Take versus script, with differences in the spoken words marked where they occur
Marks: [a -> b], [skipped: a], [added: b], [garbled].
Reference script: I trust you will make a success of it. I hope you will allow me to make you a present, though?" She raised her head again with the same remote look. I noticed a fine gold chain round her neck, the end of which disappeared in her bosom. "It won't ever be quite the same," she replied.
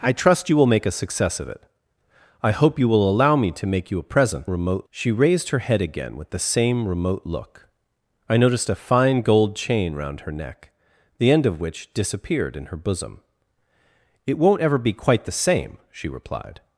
I trust you will make a success of it. I hope you will allow me to make you a present, [though?" -> remote] She raised her head again with the same remote look. I noticed a fine gold chain round her neck, the end of which disappeared in her bosom. "It won't ever be quite the same," she replied.